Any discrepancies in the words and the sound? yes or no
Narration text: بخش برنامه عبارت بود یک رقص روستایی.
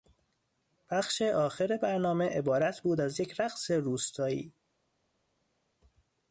yes